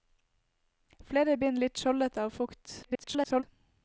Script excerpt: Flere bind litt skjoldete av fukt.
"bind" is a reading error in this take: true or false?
false